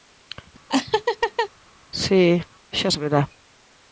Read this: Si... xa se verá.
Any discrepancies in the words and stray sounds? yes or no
yes